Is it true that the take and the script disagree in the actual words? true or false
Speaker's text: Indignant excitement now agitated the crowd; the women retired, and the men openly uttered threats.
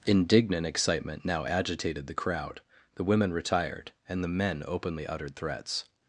false